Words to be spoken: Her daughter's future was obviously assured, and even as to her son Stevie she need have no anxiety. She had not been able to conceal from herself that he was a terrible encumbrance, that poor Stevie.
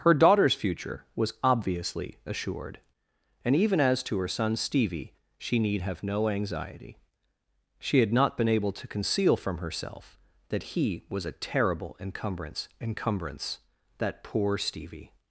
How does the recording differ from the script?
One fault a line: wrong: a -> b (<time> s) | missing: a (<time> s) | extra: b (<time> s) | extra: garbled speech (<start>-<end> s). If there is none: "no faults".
extra: encumbrance (12.8 s)